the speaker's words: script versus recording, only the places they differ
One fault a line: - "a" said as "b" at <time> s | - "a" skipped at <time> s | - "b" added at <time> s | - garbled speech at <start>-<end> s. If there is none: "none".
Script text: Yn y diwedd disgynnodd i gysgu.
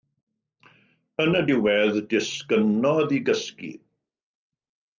none